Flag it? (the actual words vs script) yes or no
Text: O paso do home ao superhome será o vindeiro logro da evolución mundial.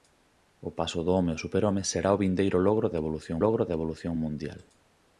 yes